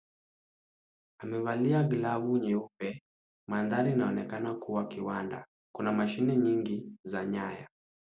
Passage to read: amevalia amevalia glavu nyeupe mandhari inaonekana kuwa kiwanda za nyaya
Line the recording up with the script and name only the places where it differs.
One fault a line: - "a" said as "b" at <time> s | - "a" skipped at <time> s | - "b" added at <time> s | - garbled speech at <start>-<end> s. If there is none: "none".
- "amevalia" skipped at 1.8 s
- "kuna mashine nyingi" added at 5.8 s